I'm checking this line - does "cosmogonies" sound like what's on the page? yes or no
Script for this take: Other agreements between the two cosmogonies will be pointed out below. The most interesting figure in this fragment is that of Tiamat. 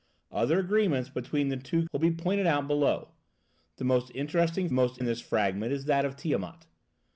no